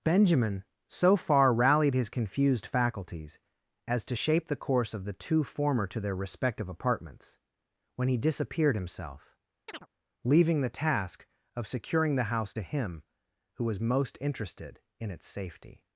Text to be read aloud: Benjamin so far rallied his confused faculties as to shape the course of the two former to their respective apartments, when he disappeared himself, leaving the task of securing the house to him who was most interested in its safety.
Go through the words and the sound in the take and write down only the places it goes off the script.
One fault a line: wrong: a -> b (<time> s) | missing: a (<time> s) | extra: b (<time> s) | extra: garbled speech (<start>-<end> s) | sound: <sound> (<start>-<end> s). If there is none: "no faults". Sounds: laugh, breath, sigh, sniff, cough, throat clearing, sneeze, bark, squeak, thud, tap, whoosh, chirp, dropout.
sound: chirp (9.7-9.9 s)